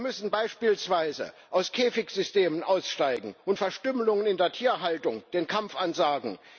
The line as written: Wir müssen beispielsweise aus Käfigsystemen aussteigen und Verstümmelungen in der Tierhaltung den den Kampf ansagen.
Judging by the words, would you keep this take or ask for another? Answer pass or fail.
fail